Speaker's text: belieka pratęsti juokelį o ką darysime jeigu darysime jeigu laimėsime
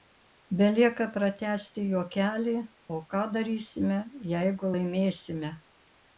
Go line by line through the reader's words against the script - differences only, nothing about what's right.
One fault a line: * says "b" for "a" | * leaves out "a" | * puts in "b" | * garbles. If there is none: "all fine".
* leaves out "darysime jeigu"